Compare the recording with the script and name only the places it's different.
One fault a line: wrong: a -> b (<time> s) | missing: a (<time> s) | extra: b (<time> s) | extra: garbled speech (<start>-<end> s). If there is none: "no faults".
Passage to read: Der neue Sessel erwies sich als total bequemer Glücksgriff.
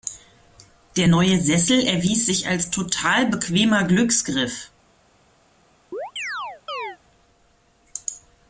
no faults